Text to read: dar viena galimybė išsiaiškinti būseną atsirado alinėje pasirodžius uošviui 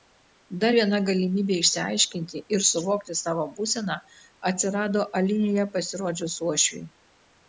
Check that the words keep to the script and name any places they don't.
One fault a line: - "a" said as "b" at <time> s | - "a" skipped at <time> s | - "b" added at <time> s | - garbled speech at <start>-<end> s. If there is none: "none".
- "ir suvokti savo" added at 2.6 s